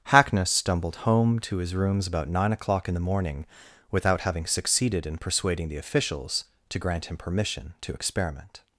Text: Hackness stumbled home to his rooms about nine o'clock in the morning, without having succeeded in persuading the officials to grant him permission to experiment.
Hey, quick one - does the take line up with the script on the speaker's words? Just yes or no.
yes